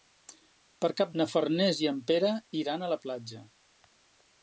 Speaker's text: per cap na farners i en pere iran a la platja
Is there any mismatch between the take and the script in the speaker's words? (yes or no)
no